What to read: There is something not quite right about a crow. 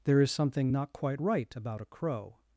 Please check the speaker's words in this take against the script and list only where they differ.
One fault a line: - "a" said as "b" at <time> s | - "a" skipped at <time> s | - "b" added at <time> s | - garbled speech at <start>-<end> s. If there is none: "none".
none